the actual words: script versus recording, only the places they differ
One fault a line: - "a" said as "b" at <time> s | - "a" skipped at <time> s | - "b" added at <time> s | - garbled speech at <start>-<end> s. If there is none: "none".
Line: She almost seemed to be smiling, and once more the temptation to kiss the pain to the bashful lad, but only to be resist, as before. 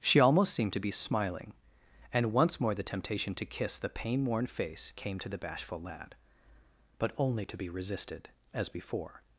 - "worn face came" added at 4.2 s
- "resist" said as "resisted" at 7.7 s